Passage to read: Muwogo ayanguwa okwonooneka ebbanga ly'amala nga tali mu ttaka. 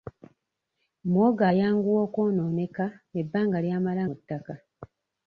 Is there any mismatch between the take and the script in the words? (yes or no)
yes